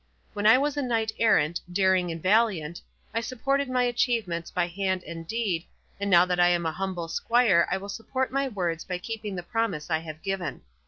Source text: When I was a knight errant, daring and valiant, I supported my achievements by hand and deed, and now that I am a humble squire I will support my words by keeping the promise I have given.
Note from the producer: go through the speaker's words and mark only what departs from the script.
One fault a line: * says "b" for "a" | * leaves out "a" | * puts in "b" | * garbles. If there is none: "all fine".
all fine